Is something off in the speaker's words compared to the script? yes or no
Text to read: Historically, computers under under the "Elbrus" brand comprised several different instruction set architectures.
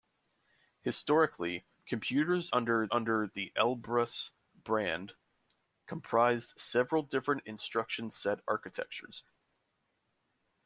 no